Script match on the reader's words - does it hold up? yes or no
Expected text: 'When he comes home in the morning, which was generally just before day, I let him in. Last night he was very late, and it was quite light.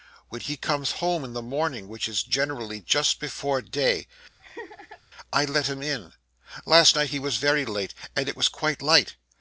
no